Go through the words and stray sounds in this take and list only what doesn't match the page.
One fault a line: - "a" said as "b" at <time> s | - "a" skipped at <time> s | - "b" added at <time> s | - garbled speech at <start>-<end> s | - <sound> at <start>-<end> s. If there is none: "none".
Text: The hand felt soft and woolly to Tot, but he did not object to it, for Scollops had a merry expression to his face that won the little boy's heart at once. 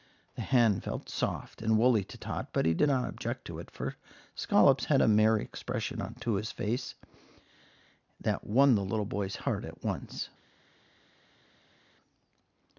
none